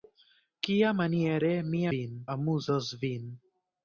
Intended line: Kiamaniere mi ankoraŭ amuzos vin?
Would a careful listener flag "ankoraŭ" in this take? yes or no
yes